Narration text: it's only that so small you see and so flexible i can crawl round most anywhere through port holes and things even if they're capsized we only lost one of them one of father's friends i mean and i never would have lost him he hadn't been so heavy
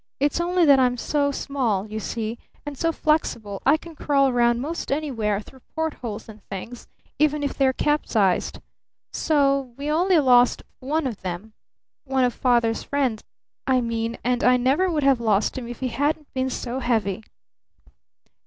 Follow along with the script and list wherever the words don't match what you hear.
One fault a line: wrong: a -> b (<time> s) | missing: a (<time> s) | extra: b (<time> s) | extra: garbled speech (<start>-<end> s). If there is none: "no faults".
extra: i'm (0.8 s)
extra: so (9.1 s)
extra: if (15.7 s)